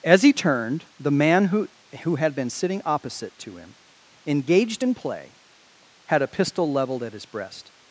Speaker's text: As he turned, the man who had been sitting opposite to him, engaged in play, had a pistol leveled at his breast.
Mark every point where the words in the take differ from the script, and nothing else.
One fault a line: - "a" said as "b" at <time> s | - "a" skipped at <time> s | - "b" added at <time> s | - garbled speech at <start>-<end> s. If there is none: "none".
- "who" added at 2.0 s